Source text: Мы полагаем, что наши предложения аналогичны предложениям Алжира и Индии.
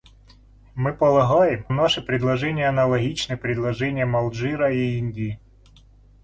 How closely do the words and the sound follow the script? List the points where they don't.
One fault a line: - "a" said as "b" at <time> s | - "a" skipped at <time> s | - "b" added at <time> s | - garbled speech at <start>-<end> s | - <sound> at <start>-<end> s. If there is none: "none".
- "что" skipped at 1.7 s